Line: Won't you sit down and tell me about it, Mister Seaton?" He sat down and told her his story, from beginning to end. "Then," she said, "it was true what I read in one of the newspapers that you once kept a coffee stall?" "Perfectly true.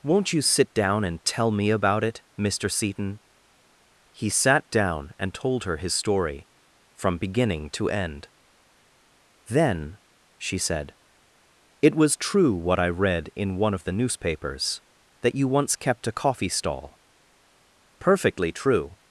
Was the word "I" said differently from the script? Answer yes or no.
no